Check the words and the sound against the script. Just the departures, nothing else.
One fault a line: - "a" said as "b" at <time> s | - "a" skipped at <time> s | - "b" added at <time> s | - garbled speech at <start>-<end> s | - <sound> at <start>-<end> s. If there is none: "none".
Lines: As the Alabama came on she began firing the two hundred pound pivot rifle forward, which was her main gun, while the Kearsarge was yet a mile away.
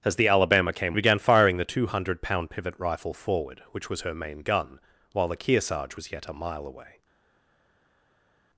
- "on she" skipped at 1.0 s